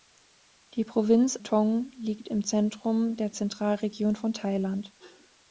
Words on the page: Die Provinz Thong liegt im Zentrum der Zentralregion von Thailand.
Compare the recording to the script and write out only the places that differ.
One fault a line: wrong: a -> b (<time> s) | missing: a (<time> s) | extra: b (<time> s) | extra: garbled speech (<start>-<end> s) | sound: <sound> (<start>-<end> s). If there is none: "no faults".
no faults